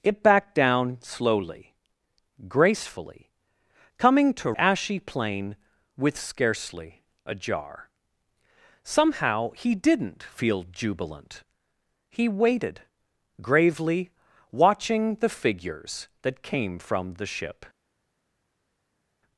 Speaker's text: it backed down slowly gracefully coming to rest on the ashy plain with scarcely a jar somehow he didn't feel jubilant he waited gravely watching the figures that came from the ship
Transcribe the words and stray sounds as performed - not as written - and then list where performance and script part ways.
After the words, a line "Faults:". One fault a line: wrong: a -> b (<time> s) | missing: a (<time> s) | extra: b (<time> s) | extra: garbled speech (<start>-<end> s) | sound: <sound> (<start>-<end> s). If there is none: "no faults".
it backed down slowly gracefully coming to ashy plain with scarcely a jar somehow he didn't feel jubilant he waited gravely watching the figures that came from the ship
Faults:
missing: rest on the (4.5 s)